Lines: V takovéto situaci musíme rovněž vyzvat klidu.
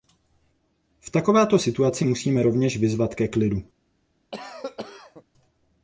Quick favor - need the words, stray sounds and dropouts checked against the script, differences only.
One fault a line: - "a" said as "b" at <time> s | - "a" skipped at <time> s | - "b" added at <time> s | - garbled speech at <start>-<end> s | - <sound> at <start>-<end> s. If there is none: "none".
- "ke" added at 3.2 s
- cough at 4.3-5.2 s